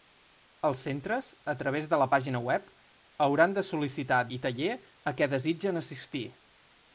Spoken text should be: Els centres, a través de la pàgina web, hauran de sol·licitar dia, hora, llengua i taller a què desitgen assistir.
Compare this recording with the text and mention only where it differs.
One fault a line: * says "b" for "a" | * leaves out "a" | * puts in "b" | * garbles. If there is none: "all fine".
* leaves out "dia hora llengua"